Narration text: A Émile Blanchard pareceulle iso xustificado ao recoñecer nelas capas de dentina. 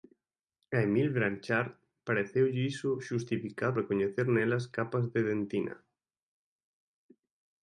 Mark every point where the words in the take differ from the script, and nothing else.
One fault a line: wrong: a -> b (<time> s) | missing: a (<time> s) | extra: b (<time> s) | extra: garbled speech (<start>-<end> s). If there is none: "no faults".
missing: ao (3.8 s)